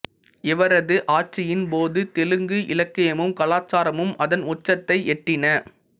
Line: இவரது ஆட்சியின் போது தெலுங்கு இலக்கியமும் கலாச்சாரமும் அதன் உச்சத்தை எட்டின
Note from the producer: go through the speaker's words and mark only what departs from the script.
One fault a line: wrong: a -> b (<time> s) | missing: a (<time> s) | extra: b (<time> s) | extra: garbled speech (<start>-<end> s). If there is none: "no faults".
no faults